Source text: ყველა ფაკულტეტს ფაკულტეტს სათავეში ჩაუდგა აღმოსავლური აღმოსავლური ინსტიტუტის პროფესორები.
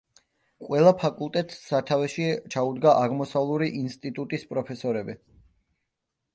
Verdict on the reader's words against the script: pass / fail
fail